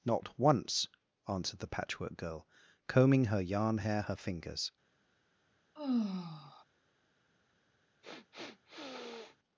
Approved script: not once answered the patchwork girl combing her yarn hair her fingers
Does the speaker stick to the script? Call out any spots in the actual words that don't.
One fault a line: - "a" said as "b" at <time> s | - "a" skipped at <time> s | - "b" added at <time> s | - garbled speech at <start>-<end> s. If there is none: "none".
none